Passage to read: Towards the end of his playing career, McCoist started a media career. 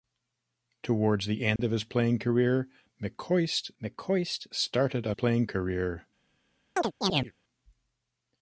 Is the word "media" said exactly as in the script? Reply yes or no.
no